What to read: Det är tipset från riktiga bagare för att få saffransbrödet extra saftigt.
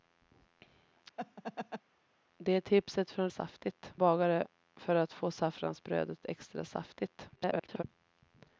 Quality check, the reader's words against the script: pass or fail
fail